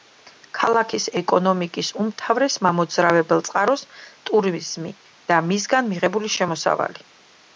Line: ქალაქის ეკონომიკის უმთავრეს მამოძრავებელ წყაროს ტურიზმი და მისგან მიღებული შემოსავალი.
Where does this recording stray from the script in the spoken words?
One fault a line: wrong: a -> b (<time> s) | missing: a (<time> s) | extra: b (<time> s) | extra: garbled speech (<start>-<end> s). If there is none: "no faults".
no faults